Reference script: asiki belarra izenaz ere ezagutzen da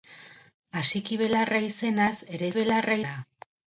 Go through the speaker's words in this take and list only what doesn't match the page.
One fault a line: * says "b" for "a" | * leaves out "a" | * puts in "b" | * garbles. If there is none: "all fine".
* says "belarra" for "ezagutzen"